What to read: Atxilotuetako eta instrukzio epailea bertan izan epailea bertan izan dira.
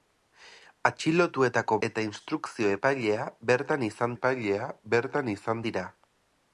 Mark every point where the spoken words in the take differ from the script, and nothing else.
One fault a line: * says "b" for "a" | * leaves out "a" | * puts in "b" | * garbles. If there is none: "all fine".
all fine